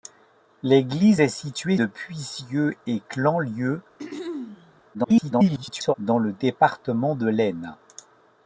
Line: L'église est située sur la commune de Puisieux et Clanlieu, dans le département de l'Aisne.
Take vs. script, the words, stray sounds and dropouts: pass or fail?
fail